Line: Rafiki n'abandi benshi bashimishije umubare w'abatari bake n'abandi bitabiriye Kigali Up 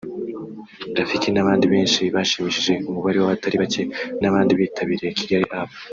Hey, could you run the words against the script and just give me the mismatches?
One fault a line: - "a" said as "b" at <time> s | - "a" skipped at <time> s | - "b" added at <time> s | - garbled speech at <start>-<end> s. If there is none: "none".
none